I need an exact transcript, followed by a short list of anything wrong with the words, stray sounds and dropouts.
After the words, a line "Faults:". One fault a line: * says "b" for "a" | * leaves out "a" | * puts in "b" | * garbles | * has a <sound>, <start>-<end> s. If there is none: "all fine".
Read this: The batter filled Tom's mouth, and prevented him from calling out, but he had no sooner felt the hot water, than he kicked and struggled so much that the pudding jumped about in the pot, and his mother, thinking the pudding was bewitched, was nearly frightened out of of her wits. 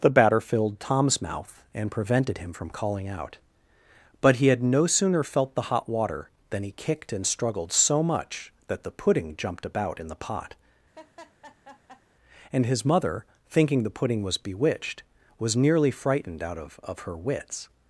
The batter filled Tom's mouth, and prevented him from calling out, but he had no sooner felt the hot water, than he kicked and struggled so much that the pudding jumped about in the pot, and his mother, thinking the pudding was bewitched, was nearly frightened out of of her wits.
Faults:
* has a laugh, 10.9-12.0 s